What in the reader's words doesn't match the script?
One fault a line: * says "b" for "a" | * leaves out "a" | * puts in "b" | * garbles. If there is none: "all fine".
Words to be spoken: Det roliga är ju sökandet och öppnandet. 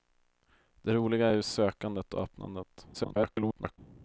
* garbles